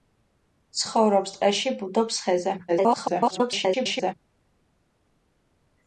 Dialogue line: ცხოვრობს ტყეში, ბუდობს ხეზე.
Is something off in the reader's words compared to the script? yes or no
yes